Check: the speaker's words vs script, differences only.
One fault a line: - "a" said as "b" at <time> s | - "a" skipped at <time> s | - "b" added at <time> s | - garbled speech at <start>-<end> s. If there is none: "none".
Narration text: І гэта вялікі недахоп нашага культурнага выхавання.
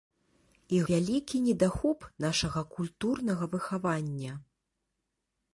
- "гэта" skipped at 0.8 s